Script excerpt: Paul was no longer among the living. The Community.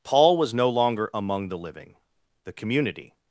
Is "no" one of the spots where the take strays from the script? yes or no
no